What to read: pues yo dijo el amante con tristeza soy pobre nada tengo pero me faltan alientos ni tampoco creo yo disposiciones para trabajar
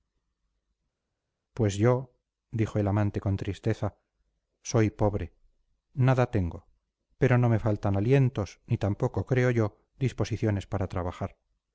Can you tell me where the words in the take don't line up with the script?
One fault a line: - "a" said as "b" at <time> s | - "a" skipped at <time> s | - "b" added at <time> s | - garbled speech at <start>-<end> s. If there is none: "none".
- "no" added at 7.4 s